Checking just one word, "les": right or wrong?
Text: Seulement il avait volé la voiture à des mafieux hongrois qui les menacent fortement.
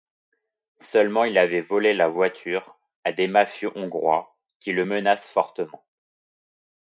wrong